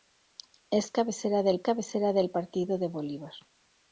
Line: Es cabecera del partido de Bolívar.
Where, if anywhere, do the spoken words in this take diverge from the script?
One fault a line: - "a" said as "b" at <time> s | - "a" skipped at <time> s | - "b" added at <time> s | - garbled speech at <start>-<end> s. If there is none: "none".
- "cabecera del" added at 1.6 s